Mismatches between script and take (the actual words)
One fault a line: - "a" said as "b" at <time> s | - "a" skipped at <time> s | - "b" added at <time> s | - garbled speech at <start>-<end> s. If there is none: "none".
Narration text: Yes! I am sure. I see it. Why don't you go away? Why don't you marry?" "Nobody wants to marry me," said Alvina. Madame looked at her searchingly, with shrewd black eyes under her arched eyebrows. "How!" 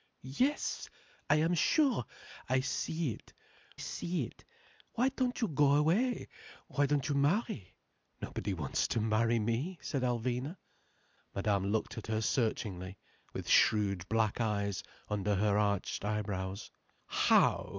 - "see it" added at 3.7 s